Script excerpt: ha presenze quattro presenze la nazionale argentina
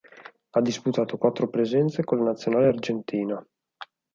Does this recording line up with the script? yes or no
no